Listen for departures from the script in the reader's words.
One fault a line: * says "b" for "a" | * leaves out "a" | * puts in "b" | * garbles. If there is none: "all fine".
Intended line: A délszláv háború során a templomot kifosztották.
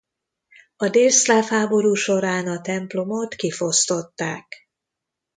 all fine